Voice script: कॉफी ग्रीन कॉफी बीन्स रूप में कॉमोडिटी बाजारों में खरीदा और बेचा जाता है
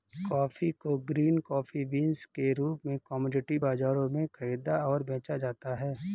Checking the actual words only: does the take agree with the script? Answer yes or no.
no